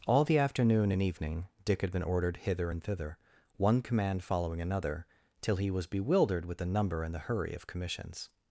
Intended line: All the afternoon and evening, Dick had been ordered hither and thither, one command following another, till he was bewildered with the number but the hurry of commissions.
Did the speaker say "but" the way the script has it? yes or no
no